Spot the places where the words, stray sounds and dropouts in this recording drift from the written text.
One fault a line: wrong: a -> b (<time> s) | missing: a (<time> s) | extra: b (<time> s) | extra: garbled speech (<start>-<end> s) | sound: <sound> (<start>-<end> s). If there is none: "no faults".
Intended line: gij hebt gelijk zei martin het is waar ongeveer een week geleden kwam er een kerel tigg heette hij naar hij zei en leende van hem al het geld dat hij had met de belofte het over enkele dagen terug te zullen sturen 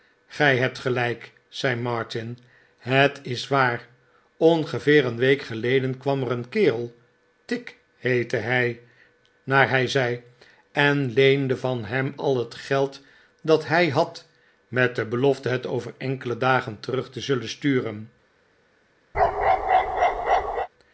sound: bark (19.1-20.7 s)